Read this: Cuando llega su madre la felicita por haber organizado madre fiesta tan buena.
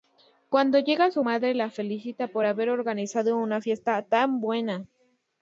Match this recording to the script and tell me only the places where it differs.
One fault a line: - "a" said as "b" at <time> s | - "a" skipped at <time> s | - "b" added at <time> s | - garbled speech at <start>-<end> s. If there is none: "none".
- "madre" said as "una" at 3.4 s